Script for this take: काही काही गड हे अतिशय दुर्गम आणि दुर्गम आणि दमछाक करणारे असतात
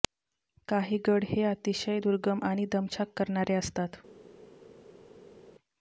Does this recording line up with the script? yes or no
no